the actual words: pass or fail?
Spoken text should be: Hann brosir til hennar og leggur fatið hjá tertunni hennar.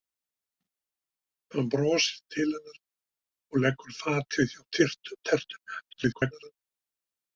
fail